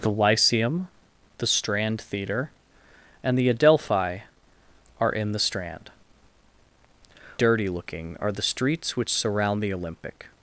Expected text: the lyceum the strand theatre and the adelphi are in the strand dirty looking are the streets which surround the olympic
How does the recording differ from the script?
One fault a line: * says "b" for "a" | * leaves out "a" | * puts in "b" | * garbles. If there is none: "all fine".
all fine